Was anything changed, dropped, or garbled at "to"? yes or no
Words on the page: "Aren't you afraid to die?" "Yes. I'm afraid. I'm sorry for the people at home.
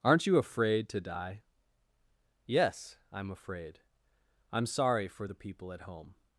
no